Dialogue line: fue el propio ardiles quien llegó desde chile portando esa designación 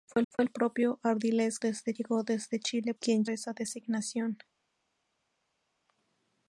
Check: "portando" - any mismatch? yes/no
yes